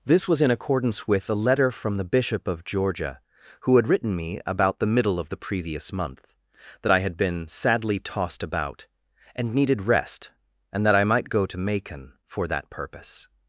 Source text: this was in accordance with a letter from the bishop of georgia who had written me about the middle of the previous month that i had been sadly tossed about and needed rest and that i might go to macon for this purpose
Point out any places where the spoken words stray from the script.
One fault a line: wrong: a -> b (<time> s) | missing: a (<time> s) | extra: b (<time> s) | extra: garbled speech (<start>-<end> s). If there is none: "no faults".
wrong: this -> that (12.5 s)